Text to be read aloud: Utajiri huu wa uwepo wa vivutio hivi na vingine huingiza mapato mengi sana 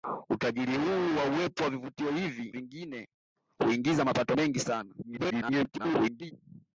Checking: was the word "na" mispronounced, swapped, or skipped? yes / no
yes